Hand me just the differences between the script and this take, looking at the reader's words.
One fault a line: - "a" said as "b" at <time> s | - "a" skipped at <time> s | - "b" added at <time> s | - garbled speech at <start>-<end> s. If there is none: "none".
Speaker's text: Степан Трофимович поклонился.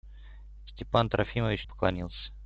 none